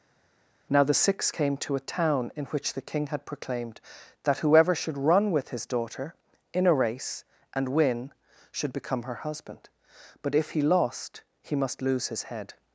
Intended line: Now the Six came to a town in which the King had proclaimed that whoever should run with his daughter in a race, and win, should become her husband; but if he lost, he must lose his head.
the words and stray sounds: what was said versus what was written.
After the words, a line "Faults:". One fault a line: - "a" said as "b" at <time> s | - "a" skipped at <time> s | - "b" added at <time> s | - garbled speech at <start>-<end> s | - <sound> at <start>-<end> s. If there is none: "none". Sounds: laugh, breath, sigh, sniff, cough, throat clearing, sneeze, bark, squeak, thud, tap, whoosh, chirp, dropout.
Now the Six came to a town in which the King had proclaimed that whoever should run with his daughter in a race, and win, should become her husband; but if he lost, he must lose his head.
Faults:
none